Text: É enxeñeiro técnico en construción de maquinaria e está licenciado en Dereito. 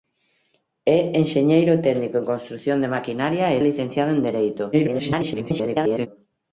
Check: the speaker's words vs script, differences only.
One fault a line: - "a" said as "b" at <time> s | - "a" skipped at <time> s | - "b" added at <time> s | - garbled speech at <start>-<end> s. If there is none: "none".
- "está" skipped at 3.6 s
- garbled speech at 4.7-6.1 s